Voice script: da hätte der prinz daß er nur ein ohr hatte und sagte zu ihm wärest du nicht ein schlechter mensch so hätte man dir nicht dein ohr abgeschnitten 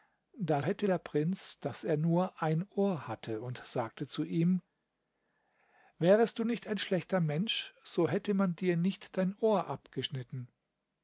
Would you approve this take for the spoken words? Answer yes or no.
yes